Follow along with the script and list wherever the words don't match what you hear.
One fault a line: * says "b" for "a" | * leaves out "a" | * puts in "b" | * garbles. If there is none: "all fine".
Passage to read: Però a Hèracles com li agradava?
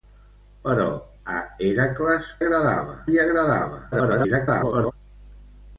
* says "agradava" for "com"
* garbles